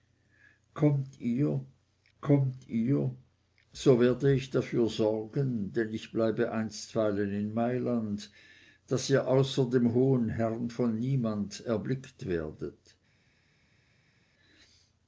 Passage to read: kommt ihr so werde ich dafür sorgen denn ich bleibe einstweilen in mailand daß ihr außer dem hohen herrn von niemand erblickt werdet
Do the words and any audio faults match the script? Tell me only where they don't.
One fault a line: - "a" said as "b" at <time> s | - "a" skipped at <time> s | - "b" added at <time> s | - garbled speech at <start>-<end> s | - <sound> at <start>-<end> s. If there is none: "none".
- "kommt ihr" added at 2.2 s